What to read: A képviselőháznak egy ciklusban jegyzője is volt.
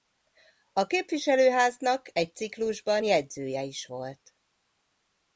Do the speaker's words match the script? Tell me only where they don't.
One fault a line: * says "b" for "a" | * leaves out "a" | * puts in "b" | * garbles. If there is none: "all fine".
all fine